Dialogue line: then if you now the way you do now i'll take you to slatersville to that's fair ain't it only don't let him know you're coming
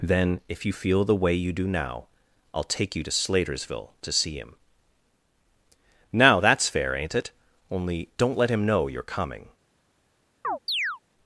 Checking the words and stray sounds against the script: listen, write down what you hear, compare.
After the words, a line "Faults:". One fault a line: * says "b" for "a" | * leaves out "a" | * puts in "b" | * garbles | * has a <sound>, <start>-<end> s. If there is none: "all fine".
then if you feel the way you do now i'll take you to slatersville to see him now that's fair ain't it only don't let him know you're coming
Faults:
* says "feel" for "now"
* puts in "see him now"
* has a chirp, 10.4-11.0 s